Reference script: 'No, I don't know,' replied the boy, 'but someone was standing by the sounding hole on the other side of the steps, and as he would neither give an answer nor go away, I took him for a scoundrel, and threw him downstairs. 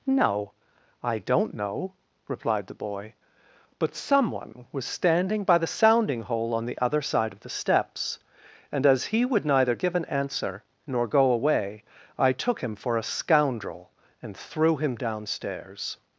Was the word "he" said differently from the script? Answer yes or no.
no